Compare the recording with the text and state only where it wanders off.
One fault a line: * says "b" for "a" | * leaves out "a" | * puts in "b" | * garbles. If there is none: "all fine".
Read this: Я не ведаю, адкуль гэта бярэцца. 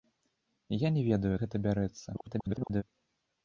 * leaves out "адкуль"
* garbles